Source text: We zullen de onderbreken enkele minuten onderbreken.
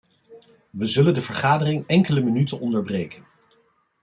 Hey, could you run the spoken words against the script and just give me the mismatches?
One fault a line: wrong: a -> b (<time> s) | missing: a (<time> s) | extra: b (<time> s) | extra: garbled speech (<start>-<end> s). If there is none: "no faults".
wrong: onderbreken -> vergadering (1.2 s)